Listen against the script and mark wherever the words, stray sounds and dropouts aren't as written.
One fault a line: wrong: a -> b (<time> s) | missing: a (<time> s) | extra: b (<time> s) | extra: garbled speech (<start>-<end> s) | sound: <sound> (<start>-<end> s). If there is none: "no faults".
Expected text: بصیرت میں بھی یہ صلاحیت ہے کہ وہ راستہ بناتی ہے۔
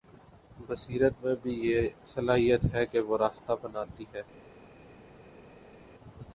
no faults